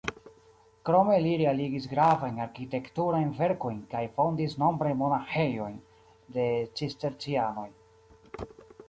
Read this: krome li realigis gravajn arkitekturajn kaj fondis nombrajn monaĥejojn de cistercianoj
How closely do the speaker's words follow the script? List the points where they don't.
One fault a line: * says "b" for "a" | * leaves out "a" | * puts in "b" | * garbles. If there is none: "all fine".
* puts in "verkojn"